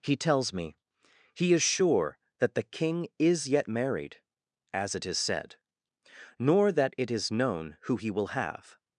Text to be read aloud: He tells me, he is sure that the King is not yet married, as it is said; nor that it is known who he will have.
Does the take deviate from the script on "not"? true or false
true